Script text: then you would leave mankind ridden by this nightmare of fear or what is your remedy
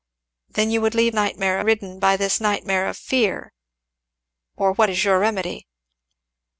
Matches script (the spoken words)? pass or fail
fail